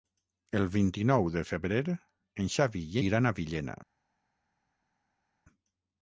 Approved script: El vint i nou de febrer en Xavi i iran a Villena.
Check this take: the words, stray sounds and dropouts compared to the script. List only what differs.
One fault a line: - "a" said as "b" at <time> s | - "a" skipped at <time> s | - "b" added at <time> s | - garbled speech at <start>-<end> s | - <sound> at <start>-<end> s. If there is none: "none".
none